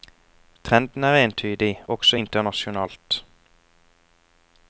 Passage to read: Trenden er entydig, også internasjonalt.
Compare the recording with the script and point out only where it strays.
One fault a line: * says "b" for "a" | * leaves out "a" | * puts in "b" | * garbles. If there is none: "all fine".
all fine